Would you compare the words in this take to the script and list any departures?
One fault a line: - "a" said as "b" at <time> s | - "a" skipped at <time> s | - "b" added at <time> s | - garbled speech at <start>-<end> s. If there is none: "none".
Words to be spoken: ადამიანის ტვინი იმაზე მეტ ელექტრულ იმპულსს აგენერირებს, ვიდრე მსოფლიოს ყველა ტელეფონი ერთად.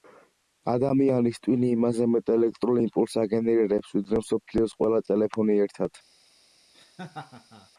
none